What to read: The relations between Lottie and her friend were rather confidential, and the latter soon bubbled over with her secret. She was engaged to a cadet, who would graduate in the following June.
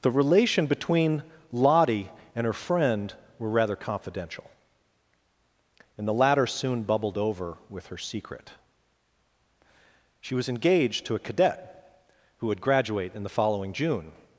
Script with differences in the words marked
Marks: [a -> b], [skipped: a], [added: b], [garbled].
The [relations -> relation] between Lottie and her friend were rather confidential, and the latter soon bubbled over with her secret. She was engaged to a cadet, who would graduate in the following June.